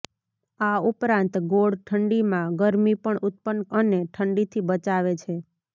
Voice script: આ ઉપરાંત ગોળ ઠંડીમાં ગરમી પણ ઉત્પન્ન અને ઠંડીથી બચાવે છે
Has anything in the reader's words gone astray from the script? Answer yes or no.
no